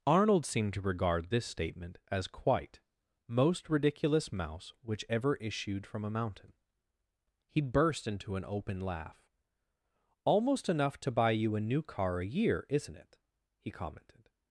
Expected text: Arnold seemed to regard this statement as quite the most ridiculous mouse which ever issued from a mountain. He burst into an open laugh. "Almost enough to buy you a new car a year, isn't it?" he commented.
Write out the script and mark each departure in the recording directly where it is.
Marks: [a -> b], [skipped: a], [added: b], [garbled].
Arnold seemed to regard this statement as quite [skipped: the] most ridiculous mouse which ever issued from a mountain. He burst into an open laugh. "Almost enough to buy you a new car a year, isn't it?" he commented.